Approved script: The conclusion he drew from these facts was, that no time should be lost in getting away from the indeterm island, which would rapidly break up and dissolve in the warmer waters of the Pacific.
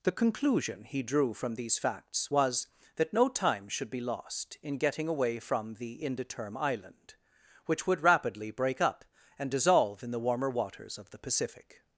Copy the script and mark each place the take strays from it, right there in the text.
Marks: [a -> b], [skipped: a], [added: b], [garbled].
The conclusion he drew from these facts was, that no time should be lost in getting away from the indeterm island, which would rapidly break up and dissolve in the warmer waters of the Pacific.